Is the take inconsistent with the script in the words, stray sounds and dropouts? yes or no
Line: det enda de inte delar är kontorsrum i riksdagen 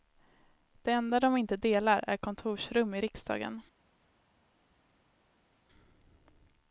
no